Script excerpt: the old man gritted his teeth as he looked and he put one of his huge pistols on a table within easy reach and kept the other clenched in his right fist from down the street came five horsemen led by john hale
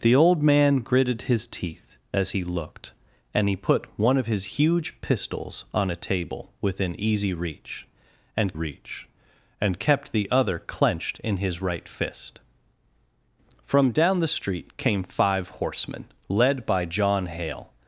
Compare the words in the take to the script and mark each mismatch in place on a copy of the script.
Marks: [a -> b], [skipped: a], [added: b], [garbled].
the old man gritted his teeth as he looked and he put one of his huge pistols on a table within easy reach and [added: reach and] kept the other clenched in his right fist from down the street came five horsemen led by john hale